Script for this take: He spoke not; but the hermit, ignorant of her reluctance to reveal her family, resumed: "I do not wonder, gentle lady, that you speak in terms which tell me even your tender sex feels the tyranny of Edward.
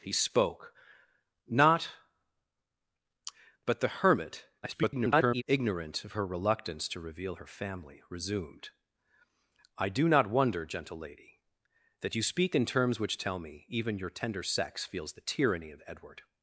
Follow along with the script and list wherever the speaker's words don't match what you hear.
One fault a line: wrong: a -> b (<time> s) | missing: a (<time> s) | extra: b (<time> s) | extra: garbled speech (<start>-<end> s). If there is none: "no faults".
extra: garbled speech (4.6-5.4 s)